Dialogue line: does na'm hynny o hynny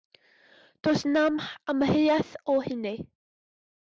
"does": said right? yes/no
yes